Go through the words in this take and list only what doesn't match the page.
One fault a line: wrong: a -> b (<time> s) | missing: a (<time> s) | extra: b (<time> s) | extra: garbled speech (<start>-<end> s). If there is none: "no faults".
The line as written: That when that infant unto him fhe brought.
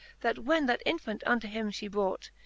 no faults